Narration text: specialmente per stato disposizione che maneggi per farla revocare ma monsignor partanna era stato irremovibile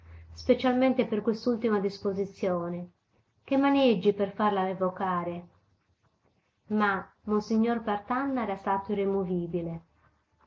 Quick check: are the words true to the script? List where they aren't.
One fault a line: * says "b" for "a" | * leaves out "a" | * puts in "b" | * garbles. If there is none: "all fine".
* says "quest'ultima" for "stato"